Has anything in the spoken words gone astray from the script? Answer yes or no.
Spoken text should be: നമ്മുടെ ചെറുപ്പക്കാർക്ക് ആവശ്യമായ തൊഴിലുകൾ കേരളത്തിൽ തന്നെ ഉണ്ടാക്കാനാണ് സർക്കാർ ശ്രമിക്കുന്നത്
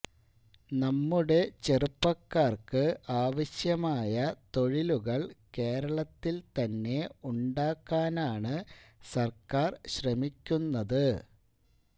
no